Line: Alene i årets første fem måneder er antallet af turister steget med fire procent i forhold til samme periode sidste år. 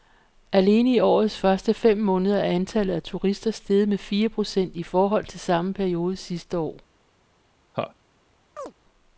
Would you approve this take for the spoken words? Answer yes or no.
yes